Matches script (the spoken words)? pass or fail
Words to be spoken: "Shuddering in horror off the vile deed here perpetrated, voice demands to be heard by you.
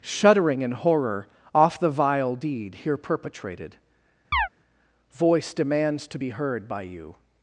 pass